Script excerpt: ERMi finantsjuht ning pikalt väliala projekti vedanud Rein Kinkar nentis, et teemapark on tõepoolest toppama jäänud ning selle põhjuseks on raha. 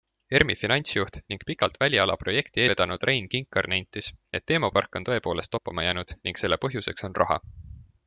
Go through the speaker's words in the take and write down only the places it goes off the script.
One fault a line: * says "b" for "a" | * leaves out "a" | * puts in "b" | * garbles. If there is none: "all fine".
all fine